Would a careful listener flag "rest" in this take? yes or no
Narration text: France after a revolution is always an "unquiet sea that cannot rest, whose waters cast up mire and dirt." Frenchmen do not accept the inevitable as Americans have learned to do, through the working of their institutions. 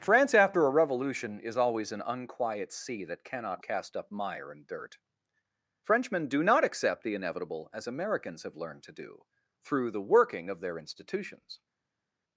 yes